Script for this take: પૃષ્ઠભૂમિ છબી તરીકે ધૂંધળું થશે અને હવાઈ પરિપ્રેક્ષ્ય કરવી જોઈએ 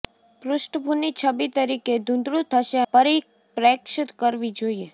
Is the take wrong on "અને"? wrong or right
wrong